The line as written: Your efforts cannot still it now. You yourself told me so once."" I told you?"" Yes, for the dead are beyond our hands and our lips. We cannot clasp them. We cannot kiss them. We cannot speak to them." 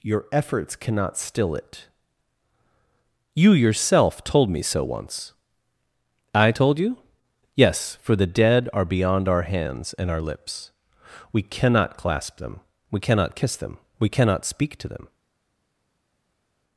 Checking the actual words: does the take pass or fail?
fail